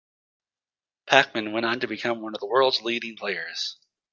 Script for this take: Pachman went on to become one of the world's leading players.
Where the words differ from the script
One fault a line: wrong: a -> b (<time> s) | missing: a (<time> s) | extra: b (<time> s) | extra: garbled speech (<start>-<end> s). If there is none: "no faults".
no faults